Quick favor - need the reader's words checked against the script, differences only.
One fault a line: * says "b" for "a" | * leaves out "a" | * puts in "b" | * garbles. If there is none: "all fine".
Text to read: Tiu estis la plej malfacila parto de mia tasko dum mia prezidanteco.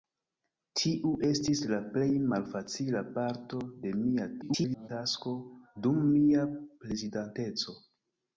* garbles